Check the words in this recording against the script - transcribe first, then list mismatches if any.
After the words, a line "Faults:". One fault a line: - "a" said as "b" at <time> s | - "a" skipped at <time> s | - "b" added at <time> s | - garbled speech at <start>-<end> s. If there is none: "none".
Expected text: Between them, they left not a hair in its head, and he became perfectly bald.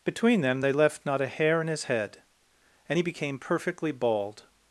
Between them, they left not a hair in his head, and he became perfectly bald.
Faults:
- "its" said as "his" at 1.7 s